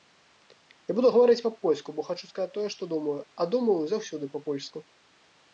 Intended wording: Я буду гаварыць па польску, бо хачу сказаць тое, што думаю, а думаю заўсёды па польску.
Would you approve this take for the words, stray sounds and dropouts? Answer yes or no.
yes